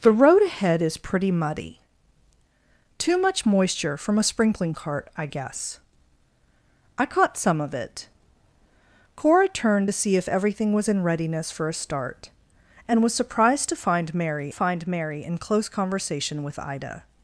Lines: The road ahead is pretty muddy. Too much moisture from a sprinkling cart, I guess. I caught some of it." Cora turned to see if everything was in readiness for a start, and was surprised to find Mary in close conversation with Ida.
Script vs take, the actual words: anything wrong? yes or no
yes